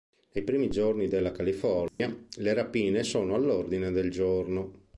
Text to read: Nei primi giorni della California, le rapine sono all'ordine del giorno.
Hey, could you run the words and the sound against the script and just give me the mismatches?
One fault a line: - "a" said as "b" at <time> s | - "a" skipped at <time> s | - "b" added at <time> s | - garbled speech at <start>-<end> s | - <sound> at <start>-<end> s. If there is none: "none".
- dropout at 1.9-2.0 s